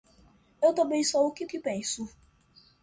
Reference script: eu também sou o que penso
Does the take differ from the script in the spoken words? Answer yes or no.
yes